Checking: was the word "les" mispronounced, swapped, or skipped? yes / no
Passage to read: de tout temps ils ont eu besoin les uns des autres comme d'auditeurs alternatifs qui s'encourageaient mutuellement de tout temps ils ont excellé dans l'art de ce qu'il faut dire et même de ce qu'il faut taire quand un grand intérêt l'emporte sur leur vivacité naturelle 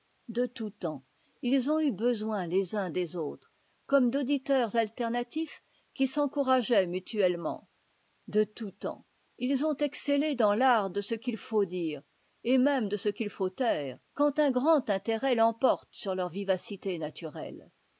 no